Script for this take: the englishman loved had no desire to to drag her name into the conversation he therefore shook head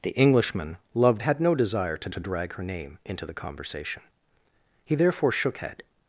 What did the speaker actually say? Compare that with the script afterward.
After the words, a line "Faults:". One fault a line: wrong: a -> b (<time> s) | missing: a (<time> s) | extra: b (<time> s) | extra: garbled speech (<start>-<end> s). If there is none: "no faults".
the englishman loved had no desire to to drag her name into the conversation he therefore shook head
Faults:
no faults